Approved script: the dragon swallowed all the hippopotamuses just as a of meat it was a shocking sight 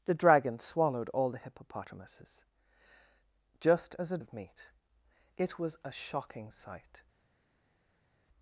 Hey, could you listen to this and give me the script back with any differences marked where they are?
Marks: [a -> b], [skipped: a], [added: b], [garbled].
the dragon swallowed all the hippopotamuses just as a of meat it was a shocking sight